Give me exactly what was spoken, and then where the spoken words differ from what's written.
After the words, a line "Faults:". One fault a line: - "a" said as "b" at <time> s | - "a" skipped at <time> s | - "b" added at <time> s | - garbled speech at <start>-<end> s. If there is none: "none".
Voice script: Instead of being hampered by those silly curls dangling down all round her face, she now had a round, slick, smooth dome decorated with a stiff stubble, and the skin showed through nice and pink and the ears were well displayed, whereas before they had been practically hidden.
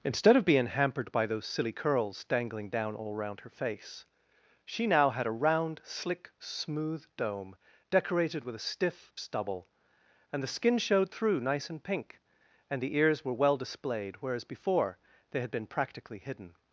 Instead of being hampered by those silly curls dangling down all round her face, she now had a round, slick, smooth dome decorated with a stiff stubble, and the skin showed through nice and pink and the ears were well displayed, whereas before they had been practically hidden.
Faults:
none